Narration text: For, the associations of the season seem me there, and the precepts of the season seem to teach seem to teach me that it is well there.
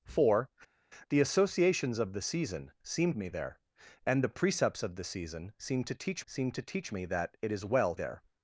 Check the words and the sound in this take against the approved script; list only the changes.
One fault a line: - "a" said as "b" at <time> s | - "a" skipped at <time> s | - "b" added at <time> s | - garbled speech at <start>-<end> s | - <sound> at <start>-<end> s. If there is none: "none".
none